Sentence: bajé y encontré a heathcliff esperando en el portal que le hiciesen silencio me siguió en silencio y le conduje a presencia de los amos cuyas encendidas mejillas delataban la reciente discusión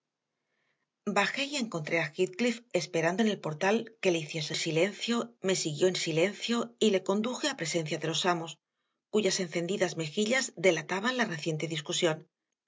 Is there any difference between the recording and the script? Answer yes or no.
no